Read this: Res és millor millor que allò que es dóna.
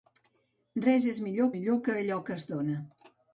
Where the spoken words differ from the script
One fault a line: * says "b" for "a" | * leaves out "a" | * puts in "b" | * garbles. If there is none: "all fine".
all fine